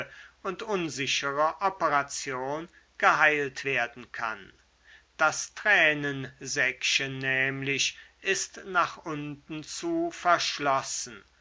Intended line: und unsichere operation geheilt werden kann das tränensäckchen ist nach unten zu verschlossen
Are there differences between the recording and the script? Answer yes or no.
yes